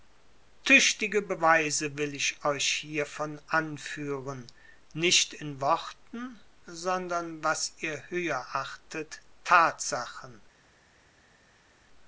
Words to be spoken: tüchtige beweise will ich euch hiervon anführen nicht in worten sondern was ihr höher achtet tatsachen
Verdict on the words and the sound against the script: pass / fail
pass